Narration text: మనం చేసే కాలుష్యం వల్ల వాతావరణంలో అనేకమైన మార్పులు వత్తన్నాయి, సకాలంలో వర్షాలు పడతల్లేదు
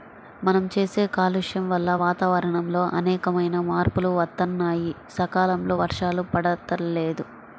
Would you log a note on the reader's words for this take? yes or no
no